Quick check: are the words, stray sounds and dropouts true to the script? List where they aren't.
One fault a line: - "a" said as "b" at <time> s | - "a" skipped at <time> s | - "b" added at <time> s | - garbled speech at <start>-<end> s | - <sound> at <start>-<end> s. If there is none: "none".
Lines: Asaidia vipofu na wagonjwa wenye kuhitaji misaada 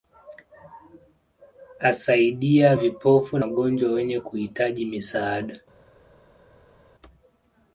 - "na" skipped at 3.4 s